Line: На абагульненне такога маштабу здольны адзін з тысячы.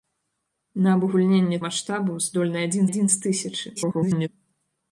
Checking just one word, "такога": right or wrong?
wrong